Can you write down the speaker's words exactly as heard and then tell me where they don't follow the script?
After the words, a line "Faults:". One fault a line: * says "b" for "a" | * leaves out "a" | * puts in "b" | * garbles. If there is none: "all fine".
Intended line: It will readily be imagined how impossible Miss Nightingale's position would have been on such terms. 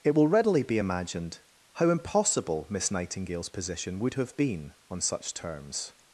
It will readily be imagined how impossible Miss Nightingale's position would have been on such terms.
Faults:
all fine